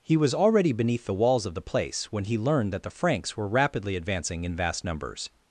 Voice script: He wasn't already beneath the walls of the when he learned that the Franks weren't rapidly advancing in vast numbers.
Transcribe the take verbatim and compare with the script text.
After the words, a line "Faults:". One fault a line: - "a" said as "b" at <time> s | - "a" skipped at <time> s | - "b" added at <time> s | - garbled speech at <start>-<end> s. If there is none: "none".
He was already beneath the walls of the place when he learned that the Franks were rapidly advancing in vast numbers.
Faults:
- "wasn't" said as "was" at 0.2 s
- "place" added at 1.6 s
- "weren't" said as "were" at 3.4 s